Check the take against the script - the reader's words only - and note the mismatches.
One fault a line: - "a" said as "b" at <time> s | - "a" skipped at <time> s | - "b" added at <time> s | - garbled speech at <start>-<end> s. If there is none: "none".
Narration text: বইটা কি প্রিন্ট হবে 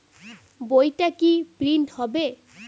none